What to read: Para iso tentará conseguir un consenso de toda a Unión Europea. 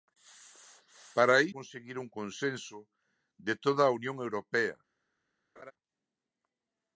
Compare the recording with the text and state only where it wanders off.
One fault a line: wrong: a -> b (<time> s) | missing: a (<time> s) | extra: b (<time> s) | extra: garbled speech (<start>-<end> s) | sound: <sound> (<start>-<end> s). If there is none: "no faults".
missing: iso tentará (1.4 s)
sound: laugh (5.6-5.7 s)